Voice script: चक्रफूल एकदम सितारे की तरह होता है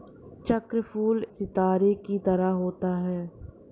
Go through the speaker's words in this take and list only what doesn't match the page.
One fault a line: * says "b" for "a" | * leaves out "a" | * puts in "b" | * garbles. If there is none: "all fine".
* leaves out "एकदम"